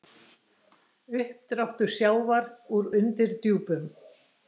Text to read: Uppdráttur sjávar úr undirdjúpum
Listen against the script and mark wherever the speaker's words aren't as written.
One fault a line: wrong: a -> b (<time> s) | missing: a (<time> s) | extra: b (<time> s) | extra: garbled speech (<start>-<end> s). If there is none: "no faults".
no faults